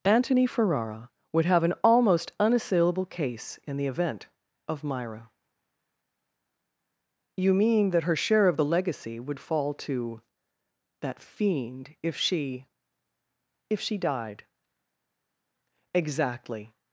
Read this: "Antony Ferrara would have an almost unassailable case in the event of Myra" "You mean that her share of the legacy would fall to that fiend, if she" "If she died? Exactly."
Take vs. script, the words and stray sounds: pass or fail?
pass